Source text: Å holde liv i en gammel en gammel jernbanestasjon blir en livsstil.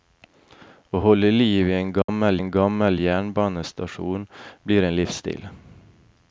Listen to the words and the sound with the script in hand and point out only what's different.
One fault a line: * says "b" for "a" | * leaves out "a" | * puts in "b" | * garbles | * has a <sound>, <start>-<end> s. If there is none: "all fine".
* has a dropout, 2.0-2.1 s